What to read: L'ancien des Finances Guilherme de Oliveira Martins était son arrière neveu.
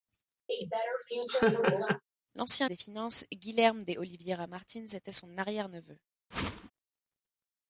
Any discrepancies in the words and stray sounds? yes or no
yes